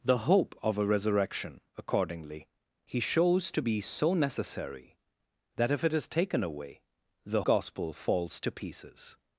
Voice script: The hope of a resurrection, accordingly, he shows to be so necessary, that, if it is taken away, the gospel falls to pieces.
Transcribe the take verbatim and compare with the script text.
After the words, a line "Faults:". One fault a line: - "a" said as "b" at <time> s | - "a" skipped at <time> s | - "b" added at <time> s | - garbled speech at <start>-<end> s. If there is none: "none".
The hope of a resurrection, accordingly, he shows to be so necessary, that, if it is taken away, the gospel falls to pieces.
Faults:
none